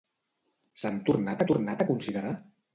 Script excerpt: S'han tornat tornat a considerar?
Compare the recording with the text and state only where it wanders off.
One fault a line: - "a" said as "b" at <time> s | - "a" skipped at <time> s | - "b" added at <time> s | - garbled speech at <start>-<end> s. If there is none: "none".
none